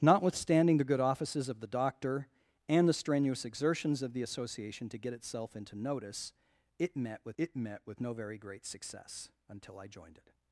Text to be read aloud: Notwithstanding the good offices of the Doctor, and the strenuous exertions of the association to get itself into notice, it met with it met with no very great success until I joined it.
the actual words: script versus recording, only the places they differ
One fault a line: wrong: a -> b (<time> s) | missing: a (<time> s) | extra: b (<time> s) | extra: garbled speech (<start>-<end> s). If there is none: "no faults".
no faults